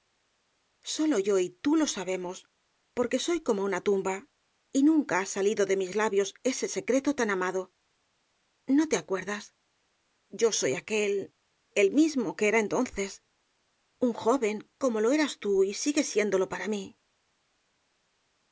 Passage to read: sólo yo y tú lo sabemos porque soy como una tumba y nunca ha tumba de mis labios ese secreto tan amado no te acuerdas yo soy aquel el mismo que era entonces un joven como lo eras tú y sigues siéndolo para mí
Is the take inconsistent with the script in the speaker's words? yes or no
yes